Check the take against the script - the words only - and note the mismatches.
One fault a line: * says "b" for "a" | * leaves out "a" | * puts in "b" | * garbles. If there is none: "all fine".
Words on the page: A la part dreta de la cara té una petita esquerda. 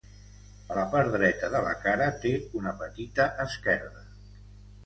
all fine